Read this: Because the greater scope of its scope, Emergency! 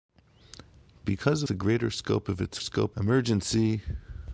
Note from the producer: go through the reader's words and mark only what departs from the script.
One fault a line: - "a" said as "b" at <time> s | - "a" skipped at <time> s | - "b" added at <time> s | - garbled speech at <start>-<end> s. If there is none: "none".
none